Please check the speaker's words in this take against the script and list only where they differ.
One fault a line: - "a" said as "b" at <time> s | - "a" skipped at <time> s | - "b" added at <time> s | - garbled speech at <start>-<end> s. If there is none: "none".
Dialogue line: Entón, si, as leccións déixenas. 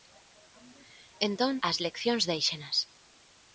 - "si" skipped at 1.5 s